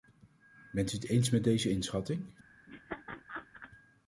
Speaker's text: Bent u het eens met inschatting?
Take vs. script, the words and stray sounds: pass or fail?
fail